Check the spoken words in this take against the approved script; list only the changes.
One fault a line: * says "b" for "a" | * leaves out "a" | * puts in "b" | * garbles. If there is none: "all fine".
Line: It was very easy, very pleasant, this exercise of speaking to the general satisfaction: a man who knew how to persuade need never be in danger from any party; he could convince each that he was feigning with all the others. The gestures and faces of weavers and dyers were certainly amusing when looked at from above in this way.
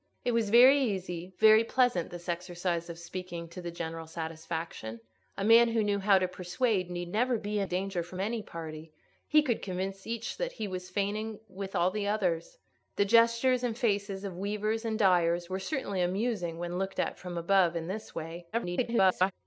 * garbles